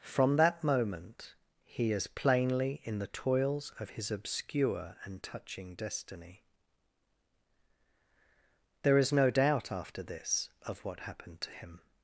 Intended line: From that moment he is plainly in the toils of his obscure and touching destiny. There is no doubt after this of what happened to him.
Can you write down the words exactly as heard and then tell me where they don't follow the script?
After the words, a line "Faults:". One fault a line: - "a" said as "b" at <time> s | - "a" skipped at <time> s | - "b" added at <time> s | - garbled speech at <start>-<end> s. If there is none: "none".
From that moment he is plainly in the toils of his obscure and touching destiny. There is no doubt after this of what happened to him.
Faults:
none